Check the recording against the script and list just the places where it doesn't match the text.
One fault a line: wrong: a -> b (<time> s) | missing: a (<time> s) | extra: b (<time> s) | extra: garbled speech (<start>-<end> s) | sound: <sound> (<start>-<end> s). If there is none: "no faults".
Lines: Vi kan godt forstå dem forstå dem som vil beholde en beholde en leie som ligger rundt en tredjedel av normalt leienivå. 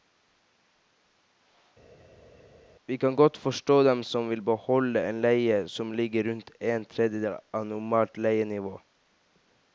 missing: forstå dem (4.0 s)
missing: beholde en (5.2 s)